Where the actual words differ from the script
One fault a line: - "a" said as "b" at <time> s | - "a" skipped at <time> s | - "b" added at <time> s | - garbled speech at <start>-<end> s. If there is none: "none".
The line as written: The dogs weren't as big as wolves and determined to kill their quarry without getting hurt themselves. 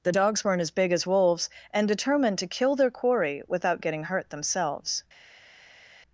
none